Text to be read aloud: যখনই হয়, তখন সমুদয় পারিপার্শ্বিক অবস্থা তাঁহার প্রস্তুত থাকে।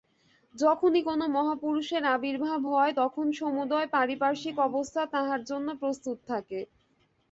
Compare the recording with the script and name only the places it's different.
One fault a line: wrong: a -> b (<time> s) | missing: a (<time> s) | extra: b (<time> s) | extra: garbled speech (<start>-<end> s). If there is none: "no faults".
extra: কোন মহাপুরুষের আবির্ভাব (1.0 s)
extra: জন্য (5.5 s)